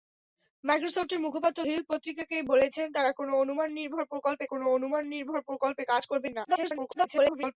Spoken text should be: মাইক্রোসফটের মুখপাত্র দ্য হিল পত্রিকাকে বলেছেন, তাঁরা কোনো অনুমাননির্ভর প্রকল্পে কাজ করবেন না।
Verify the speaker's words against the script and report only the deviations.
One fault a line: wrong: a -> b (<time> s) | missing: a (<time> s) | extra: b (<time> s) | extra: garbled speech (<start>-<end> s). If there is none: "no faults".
missing: দ্য (1.6 s)
extra: কোনো অনুমাননির্ভর প্রকল্পে (4.5 s)
extra: garbled speech (6.4-7.6 s)